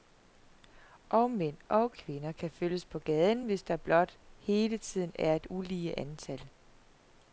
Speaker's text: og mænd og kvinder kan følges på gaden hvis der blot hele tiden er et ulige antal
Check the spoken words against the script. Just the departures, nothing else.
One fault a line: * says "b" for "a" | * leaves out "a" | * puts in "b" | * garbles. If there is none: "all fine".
all fine